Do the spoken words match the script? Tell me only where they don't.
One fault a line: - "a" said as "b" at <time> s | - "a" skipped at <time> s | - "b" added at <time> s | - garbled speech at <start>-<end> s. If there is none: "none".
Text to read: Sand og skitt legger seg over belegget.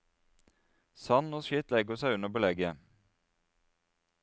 - "over" said as "under" at 2.2 s